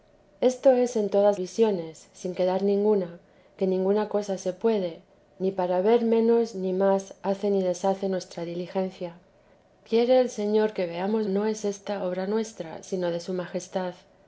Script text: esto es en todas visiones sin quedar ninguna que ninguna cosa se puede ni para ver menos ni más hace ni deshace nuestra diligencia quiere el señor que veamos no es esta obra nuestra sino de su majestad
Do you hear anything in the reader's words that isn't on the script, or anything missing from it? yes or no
no